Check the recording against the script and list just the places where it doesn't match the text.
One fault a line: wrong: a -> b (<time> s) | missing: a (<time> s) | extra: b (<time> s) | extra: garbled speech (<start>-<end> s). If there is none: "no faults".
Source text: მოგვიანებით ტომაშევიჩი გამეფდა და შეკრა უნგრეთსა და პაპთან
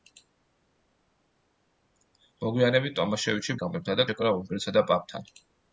no faults